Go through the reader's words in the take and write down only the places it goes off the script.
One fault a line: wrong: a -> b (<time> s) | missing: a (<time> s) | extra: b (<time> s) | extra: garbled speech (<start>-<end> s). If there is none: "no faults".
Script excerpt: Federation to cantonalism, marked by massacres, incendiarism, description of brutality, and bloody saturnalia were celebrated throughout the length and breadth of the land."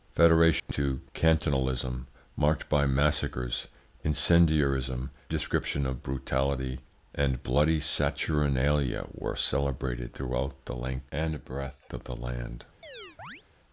no faults